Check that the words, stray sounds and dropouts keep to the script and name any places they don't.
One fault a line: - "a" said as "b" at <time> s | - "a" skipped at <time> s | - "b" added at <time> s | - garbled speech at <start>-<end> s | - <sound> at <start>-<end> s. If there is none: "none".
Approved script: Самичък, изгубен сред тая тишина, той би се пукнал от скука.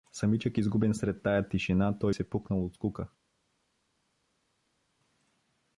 - "би" skipped at 2.1 s